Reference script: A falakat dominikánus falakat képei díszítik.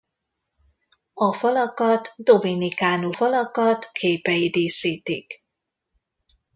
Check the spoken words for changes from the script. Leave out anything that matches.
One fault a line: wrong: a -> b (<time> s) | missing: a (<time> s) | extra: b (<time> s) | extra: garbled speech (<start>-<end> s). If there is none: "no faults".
no faults